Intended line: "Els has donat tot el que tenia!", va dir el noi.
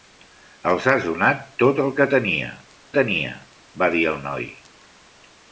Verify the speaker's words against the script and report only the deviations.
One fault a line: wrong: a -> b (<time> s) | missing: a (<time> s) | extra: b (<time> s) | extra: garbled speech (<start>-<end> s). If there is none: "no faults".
extra: tenia (3.0 s)